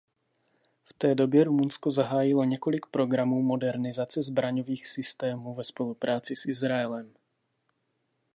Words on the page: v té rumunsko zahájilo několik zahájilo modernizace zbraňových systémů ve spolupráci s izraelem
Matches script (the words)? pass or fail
fail